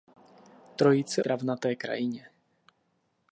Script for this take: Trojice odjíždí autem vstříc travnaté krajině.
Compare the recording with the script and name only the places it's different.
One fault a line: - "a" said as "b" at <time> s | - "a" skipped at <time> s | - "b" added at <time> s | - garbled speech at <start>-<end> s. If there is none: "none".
- "odjíždí autem vstříc" skipped at 1.2 s